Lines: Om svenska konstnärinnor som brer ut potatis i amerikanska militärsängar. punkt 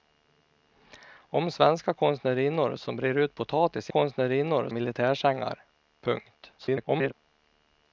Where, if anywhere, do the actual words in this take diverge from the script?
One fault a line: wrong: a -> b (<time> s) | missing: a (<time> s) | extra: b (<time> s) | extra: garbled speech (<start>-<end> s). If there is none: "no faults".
wrong: amerikanska -> konstnärinnor (3.9 s)
extra: garbled speech (6.6-7.1 s)